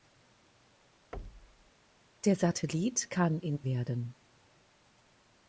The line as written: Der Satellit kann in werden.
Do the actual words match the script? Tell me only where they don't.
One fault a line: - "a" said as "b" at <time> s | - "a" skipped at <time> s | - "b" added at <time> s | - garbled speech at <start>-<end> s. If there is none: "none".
none